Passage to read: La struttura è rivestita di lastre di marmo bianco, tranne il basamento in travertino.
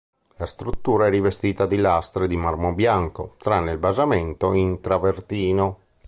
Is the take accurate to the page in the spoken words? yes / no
yes